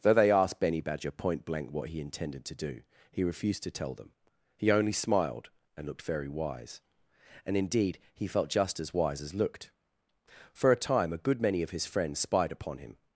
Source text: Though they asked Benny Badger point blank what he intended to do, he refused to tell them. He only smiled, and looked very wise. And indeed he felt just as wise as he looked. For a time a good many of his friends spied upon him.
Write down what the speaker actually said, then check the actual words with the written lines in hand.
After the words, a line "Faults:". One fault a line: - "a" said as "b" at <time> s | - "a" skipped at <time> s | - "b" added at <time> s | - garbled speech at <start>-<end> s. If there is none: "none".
Though they asked Benny Badger point blank what he intended to do, he refused to tell them. He only smiled, and looked very wise. And indeed he felt just as wise as looked. For a time a good many of his friends spied upon him.
Faults:
- "he" skipped at 9.3 s